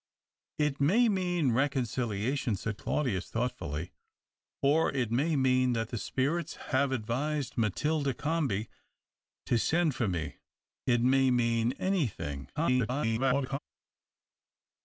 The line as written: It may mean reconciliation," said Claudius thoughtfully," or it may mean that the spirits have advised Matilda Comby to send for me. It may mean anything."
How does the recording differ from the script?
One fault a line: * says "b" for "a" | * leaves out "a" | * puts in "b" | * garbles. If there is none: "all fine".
* garbles